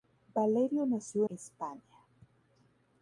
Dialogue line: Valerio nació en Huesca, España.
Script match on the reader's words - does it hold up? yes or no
no